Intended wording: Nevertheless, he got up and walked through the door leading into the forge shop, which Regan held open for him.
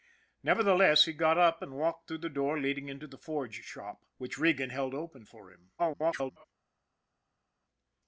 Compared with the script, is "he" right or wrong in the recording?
right